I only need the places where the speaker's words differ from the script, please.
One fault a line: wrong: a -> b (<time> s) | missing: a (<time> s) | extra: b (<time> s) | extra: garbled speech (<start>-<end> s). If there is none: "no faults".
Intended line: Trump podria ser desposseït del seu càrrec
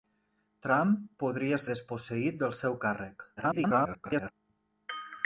missing: ser (1.6 s)
extra: garbled speech (3.4-4.3 s)